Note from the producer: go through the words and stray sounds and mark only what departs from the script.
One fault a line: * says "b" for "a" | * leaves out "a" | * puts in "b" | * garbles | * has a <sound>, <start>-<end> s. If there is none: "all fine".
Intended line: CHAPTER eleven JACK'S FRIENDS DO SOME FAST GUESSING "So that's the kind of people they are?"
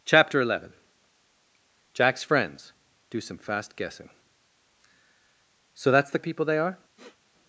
* leaves out "kind"
* has a sniff, 7.0-7.2 s